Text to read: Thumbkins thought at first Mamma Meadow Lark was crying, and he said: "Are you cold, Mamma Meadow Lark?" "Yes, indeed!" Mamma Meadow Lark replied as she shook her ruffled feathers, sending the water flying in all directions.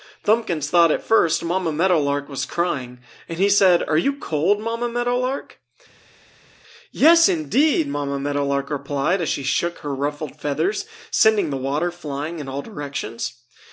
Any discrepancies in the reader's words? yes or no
no